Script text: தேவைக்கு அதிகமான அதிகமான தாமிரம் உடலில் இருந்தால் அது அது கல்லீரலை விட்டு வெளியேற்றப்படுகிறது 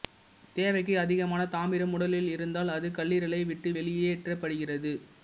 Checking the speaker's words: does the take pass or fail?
fail